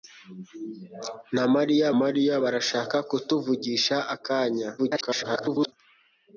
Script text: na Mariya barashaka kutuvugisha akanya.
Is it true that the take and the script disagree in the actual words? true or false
true